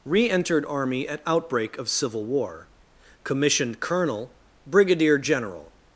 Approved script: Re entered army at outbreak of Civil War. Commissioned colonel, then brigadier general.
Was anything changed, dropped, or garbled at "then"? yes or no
yes